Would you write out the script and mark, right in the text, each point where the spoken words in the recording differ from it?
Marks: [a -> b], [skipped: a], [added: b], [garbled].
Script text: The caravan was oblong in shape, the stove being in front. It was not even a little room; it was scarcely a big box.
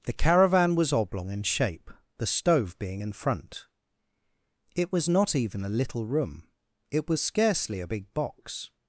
The caravan was oblong in shape, the stove being in front. It was not even a little room; it was scarcely a big box.